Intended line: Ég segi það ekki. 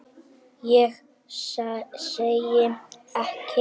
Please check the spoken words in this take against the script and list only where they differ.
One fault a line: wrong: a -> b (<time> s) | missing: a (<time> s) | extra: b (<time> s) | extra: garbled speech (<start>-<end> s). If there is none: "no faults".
missing: það (2.6 s)